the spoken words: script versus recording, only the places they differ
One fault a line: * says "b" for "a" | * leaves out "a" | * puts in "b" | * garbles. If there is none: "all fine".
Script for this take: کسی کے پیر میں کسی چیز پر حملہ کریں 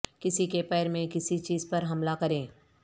all fine